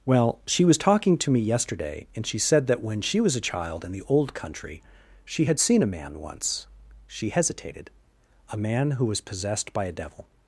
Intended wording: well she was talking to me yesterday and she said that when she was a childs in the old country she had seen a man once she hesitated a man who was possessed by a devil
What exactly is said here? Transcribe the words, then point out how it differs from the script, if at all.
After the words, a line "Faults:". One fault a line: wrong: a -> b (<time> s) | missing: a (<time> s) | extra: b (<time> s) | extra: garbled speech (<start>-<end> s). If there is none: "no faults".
well she was talking to me yesterday and she said that when she was a child in the old country she had seen a man once she hesitated a man who was possessed by a devil
Faults:
wrong: childs -> child (3.4 s)